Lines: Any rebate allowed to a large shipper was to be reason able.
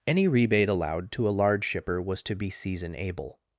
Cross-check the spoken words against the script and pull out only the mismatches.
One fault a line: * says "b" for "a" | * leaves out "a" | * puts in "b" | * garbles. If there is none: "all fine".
* says "season" for "reason"